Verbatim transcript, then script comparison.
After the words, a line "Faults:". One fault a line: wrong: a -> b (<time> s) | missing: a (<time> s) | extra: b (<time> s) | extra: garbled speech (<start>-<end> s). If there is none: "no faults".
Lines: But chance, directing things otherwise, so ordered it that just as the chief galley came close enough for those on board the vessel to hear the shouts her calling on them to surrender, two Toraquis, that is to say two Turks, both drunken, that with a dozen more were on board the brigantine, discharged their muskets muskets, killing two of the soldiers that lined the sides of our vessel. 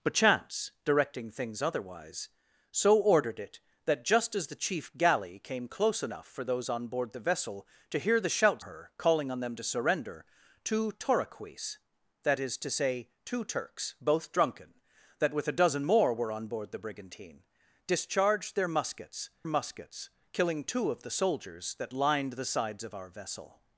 But chance, directing things otherwise, so ordered it that just as the chief galley came close enough for those on board the vessel to hear the shouts her calling on them to surrender, two Toraquis, that is to say two Turks, both drunken, that with a dozen more were on board the brigantine, discharged their muskets muskets, killing two of the soldiers that lined the sides of our vessel.
Faults:
no faults